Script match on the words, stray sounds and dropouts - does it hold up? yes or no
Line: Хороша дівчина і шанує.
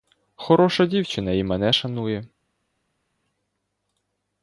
no